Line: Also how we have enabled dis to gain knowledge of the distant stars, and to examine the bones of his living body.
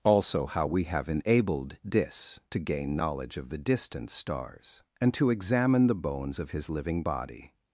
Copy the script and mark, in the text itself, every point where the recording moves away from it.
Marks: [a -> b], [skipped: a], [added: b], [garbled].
Also how we have enabled dis to gain knowledge of the distant stars, and to examine the bones of his living body.